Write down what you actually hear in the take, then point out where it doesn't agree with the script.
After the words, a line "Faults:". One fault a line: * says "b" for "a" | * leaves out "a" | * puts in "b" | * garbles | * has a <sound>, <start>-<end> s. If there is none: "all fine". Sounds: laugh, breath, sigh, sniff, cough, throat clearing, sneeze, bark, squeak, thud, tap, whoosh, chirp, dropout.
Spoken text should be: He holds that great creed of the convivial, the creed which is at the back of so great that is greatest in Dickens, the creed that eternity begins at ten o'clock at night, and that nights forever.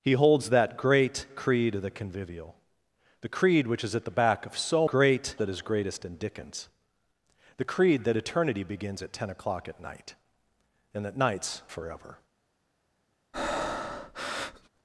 He holds that great creed of the convivial, the creed which is at the back of so great that is greatest in Dickens, the creed that eternity begins at ten o'clock at night, and that nights forever.
Faults:
* has a breath, 13.3-14.7 s